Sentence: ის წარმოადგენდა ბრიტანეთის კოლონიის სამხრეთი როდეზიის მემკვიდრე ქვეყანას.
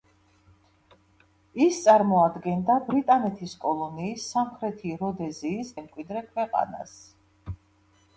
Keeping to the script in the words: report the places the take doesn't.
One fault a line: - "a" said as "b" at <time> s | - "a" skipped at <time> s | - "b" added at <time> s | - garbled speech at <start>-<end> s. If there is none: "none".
none